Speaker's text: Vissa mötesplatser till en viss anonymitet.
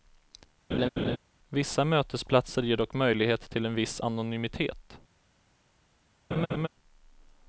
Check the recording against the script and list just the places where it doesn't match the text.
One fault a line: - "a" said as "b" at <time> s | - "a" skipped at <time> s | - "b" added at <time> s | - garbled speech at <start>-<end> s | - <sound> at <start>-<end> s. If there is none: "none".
- laugh at 0.7-1.2 s
- "ger dock möjlighet" added at 2.6 s
- laugh at 6.3-6.7 s